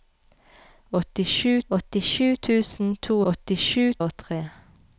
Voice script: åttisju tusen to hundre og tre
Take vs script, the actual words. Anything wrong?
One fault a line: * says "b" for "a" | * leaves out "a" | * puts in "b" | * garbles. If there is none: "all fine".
* puts in "åttisju"
* says "åttisju" for "hundre"